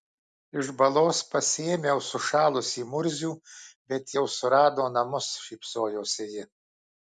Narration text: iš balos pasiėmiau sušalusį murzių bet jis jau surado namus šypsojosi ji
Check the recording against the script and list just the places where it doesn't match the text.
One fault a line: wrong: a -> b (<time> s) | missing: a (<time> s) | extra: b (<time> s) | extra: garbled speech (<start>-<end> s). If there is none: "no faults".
missing: jis (4.2 s)